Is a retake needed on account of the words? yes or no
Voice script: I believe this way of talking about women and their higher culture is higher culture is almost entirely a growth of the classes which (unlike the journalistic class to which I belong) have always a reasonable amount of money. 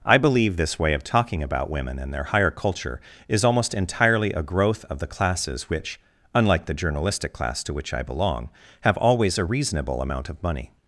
yes